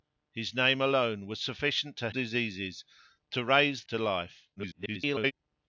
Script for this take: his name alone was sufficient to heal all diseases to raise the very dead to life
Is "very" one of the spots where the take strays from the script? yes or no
yes